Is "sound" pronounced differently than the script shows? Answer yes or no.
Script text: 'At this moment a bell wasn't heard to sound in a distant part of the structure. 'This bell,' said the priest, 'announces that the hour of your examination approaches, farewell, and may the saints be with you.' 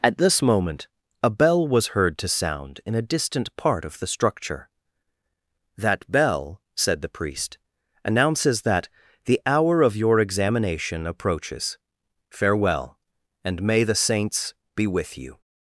no